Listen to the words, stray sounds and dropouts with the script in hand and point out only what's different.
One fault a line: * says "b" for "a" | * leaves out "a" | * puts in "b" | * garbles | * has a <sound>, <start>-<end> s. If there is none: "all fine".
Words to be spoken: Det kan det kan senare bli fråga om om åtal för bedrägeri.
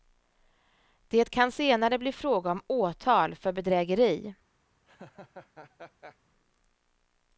* leaves out "det kan"
* leaves out "om"
* has a laugh, 4.9-6.2 s